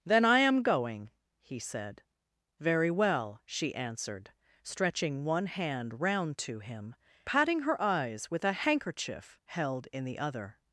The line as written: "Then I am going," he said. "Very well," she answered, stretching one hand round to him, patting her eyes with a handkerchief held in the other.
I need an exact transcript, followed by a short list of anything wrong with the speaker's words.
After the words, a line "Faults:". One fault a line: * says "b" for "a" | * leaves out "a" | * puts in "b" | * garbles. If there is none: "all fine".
"Then I am going," he said. "Very well," she answered, stretching one hand round to him, patting her eyes with a handkerchief held in the other.
Faults:
all fine